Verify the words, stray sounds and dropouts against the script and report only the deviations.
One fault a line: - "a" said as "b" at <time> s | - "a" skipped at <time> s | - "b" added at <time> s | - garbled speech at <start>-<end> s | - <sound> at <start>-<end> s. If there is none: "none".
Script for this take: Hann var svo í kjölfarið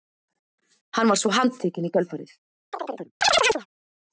- "handtekinn" added at 1.4 s
- chirp at 2.7-3.7 s